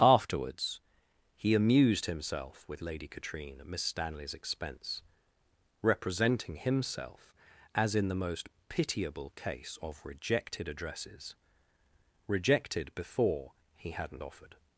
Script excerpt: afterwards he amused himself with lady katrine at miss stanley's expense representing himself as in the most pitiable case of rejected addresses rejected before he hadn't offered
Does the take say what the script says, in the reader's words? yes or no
yes